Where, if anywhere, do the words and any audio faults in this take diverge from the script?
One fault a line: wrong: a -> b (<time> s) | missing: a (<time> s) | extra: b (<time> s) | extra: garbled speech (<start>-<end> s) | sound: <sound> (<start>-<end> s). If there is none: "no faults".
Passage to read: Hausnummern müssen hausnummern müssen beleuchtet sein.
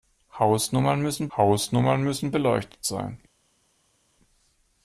no faults